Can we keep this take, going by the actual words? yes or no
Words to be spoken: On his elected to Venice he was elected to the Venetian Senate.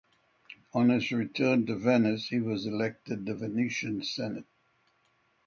no